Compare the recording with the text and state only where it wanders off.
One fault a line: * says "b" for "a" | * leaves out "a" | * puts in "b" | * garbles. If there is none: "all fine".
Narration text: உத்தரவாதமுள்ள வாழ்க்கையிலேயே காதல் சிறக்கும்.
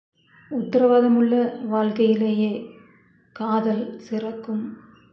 all fine